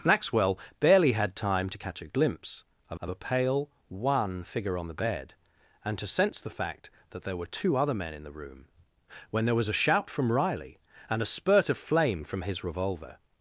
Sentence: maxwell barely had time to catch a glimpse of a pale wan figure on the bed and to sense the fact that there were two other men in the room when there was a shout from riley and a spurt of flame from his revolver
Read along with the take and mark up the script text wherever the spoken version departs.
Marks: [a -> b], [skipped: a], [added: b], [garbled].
maxwell barely had time to catch a glimpse of [added: of] a pale wan figure on the bed and to sense the fact that there were two other men in the room when there was a shout from riley and a spurt of flame from his revolver